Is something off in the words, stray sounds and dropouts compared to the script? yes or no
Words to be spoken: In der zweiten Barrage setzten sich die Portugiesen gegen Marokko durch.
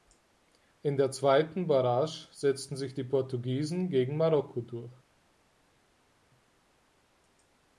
no